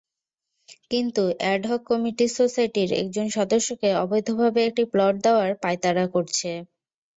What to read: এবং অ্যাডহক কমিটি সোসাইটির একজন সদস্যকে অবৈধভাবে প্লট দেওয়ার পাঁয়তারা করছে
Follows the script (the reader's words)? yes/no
no